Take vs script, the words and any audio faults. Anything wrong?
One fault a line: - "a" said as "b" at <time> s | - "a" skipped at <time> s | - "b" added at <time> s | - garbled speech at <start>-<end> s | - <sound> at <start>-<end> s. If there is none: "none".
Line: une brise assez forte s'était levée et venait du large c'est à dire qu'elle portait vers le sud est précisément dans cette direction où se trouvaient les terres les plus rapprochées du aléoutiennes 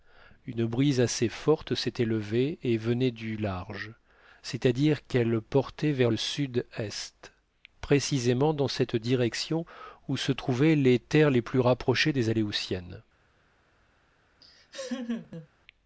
- "du" said as "des" at 12.1 s
- laugh at 14.4-15.5 s